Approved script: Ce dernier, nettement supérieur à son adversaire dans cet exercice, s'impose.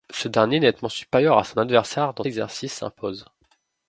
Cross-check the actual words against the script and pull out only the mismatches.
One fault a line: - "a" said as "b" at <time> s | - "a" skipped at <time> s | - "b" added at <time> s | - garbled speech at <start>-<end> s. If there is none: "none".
- "cet" skipped at 2.2 s